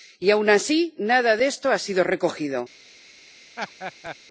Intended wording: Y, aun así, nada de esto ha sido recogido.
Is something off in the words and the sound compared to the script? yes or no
yes